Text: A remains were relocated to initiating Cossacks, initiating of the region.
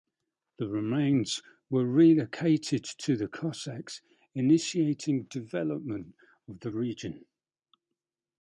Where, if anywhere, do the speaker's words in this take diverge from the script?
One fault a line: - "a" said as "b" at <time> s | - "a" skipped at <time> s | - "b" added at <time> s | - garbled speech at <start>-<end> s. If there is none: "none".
- "A" said as "The" at 0.6 s
- "initiating" said as "the" at 3.1 s
- "development" added at 5.3 s